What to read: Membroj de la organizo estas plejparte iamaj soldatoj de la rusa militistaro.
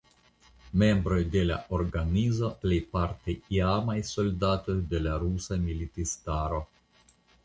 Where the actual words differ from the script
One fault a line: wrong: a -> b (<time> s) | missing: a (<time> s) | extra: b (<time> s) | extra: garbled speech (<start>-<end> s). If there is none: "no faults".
missing: estas (2.5 s)